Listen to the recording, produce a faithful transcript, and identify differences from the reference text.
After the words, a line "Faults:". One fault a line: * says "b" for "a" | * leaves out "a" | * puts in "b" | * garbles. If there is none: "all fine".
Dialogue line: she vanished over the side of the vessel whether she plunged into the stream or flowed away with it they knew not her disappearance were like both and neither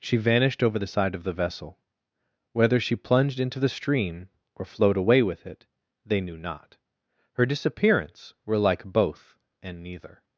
she vanished over the side of the vessel whether she plunged into the stream or flowed away with it they knew not her disappearance were like both and neither
Faults:
all fine